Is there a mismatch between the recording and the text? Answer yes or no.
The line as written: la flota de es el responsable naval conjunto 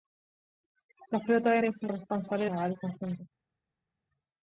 no